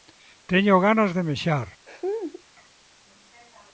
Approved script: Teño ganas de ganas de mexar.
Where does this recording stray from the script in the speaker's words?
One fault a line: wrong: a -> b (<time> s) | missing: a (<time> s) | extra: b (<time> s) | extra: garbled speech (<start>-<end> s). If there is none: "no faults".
missing: ganas de (1.2 s)